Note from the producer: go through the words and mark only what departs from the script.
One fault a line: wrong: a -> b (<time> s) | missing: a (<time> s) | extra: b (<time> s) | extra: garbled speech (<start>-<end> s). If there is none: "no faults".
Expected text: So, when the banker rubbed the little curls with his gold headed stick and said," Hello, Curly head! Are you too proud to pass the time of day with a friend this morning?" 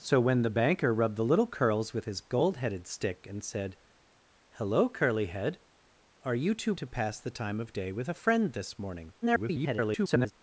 missing: proud (6.8 s)
extra: garbled speech (9.2-10.3 s)